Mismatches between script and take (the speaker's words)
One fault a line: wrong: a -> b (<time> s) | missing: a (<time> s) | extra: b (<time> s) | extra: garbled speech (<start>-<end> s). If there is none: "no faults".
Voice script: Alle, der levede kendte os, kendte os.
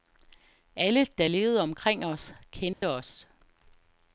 wrong: kendte -> omkring (1.6 s)